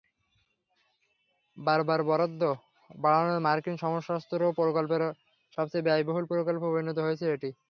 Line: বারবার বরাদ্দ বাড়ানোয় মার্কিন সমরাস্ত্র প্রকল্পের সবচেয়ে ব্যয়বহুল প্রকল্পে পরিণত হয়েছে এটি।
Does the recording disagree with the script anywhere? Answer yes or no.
no